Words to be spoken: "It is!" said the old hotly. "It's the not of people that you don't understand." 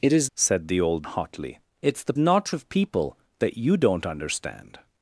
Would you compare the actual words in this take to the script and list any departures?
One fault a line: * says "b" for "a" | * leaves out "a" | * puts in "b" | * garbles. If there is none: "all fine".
all fine